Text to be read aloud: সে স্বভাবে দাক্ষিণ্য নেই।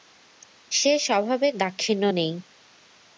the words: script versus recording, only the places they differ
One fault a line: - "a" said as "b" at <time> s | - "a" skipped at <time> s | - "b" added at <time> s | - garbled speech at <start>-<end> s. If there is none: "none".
none